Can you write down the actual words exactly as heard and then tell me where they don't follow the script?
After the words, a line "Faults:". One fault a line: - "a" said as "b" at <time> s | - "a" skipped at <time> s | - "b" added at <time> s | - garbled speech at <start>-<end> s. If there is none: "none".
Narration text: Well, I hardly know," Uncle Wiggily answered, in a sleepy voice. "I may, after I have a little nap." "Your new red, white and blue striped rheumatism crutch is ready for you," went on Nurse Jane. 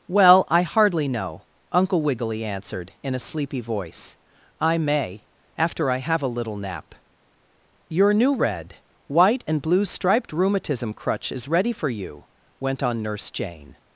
Well, I hardly know," Uncle Wiggily answered, in a sleepy voice. "I may, after I have a little nap." "Your new red, white and blue striped rheumatism crutch is ready for you," went on Nurse Jane.
Faults:
none